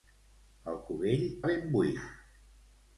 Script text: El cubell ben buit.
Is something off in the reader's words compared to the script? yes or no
no